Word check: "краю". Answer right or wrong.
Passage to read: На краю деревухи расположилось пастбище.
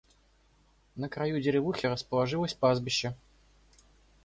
right